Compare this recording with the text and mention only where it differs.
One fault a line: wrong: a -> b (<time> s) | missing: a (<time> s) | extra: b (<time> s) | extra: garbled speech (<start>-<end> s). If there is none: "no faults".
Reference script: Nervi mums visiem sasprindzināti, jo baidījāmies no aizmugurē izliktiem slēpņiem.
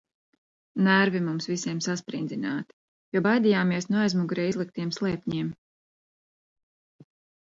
no faults